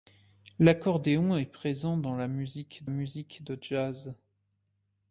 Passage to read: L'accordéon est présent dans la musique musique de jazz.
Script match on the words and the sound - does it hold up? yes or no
yes